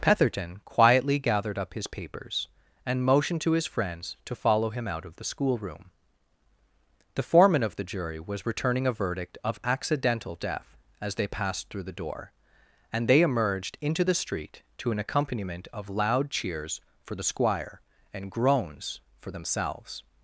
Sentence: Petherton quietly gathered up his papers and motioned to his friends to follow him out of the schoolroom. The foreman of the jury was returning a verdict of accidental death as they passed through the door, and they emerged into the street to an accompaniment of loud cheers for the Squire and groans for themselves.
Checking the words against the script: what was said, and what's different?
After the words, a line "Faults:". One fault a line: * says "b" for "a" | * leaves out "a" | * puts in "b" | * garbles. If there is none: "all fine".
Petherton quietly gathered up his papers and motioned to his friends to follow him out of the schoolroom. The foreman of the jury was returning a verdict of accidental death as they passed through the door, and they emerged into the street to an accompaniment of loud cheers for the Squire and groans for themselves.
Faults:
all fine